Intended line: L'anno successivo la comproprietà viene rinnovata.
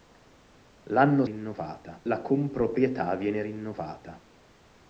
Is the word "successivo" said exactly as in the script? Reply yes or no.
no